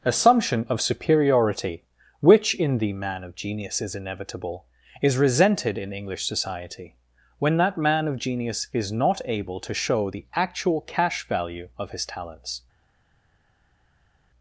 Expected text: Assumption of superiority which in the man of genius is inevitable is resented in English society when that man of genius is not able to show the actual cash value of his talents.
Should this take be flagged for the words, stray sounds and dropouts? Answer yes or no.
no